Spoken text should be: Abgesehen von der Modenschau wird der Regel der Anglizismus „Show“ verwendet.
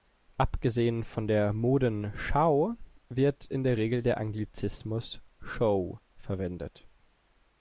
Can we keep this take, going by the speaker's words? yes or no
no